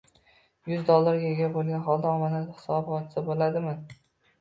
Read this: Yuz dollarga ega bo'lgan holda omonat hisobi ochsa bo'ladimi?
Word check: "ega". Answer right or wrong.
right